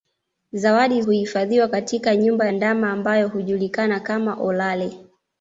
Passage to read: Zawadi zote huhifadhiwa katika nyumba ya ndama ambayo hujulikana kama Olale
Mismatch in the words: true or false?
true